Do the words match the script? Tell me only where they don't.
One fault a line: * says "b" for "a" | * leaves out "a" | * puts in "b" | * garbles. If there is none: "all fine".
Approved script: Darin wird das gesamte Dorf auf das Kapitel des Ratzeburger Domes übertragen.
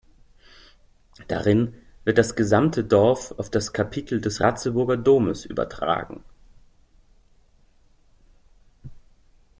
all fine